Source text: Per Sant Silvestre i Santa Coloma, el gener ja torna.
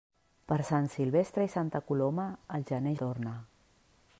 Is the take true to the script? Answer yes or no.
no